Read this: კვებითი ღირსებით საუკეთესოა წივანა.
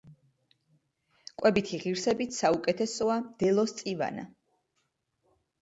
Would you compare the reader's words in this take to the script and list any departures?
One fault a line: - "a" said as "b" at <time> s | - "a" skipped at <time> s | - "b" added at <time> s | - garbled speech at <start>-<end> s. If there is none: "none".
- "მდელოს" added at 3.3 s